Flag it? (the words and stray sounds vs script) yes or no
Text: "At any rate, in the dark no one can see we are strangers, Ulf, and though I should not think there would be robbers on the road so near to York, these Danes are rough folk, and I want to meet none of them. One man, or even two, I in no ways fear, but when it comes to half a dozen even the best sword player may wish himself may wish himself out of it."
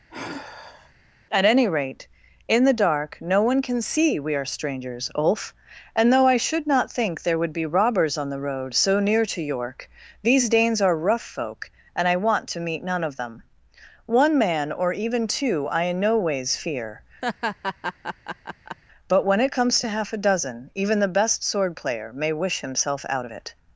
yes